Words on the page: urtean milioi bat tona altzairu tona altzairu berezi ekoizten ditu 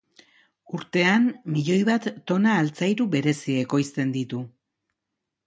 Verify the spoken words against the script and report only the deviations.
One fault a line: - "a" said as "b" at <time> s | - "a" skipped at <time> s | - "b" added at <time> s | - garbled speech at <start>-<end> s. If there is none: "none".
- "tona altzairu" skipped at 3.1 s